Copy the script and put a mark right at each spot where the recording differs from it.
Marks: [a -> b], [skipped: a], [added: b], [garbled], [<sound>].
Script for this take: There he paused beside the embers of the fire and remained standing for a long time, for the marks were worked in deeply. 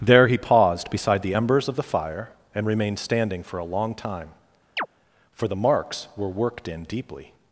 There he paused beside the embers of the fire and remained standing for a long time, [chirp] for the marks were worked in deeply.